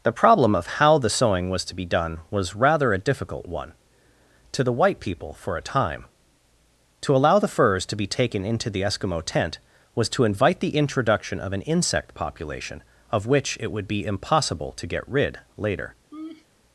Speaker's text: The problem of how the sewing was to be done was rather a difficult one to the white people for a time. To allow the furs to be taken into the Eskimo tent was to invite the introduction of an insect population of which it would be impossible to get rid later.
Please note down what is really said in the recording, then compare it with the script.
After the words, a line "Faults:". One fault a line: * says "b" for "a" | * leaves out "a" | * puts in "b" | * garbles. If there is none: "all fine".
The problem of how the sewing was to be done was rather a difficult one to the white people for a time. To allow the furs to be taken into the Eskimo tent was to invite the introduction of an insect population of which it would be impossible to get rid later.
Faults:
all fine